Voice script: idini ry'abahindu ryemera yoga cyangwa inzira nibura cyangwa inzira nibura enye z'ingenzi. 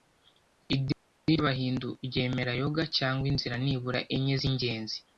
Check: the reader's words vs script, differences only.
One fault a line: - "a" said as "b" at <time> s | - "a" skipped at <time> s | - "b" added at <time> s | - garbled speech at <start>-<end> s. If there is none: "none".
- "cyangwa inzira nibura" skipped at 4.0 s